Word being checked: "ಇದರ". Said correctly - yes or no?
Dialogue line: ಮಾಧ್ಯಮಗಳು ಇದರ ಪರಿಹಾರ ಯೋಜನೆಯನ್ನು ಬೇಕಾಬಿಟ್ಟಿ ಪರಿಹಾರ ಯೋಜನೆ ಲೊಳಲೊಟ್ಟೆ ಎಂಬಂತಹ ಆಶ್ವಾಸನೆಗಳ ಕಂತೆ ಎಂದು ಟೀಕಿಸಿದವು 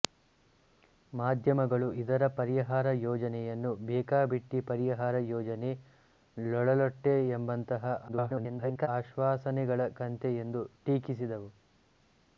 yes